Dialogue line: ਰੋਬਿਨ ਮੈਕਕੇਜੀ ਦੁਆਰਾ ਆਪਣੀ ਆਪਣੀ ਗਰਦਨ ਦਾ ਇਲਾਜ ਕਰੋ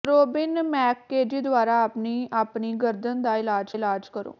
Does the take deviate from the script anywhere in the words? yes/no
yes